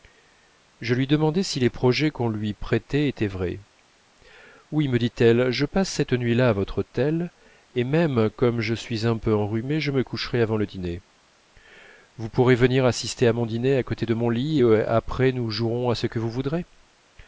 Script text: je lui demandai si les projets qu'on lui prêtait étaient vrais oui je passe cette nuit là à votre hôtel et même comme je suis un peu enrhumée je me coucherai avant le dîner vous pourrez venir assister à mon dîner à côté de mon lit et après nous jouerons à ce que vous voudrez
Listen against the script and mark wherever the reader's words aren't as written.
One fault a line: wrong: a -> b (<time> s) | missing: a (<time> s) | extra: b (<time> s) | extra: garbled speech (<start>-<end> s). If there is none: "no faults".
extra: me dit elle (4.9 s)